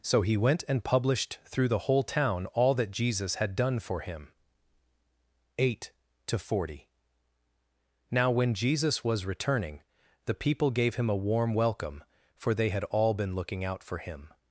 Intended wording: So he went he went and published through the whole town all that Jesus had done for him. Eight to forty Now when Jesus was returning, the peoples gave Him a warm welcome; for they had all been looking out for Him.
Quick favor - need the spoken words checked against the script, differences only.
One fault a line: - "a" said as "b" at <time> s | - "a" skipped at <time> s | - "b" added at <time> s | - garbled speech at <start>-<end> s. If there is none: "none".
- "he went" skipped at 0.6 s
- "peoples" said as "people" at 10.3 s